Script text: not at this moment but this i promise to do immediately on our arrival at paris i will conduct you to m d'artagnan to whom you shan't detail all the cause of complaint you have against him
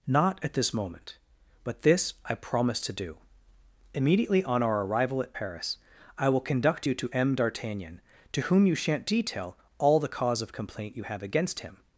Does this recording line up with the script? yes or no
yes